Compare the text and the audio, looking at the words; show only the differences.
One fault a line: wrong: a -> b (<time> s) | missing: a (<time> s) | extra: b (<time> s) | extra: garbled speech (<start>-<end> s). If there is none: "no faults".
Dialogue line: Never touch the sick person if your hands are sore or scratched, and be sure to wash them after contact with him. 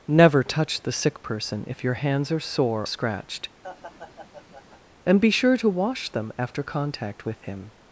missing: or (2.9 s)